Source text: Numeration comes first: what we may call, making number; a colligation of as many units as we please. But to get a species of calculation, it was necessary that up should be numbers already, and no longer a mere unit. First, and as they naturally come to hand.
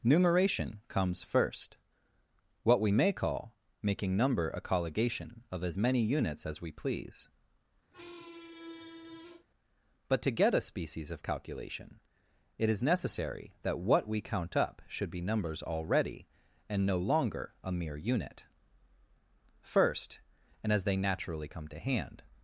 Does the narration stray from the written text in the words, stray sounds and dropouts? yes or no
yes